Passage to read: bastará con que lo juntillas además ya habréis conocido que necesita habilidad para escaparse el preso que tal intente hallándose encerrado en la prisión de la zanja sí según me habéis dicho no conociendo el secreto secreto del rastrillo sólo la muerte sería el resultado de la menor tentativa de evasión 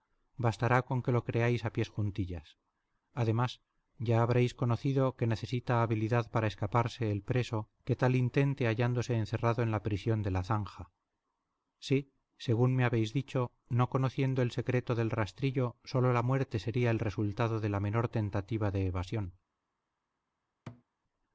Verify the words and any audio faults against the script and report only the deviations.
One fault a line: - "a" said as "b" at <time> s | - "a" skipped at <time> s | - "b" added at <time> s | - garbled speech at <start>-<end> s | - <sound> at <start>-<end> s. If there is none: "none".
- "creáis a pies" added at 1.3 s
- "secreto" skipped at 14.9 s
- thud at 20.7-20.8 s